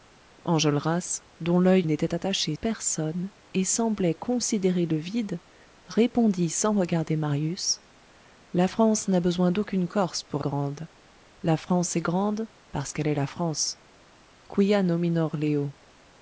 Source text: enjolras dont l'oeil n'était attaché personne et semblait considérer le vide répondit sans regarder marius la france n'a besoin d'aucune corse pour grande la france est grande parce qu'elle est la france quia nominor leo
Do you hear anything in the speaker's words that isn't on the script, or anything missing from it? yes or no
no